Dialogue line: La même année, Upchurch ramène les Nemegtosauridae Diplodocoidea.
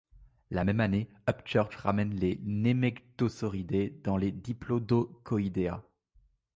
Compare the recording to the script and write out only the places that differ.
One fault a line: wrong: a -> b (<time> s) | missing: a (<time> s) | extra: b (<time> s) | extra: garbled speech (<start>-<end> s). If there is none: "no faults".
extra: dans les (4.0 s)